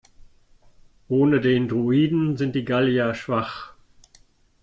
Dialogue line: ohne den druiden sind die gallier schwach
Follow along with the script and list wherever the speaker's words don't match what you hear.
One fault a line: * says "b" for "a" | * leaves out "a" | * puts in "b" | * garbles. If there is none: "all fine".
all fine